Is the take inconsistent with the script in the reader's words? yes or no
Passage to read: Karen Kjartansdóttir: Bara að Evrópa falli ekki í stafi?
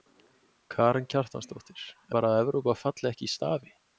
no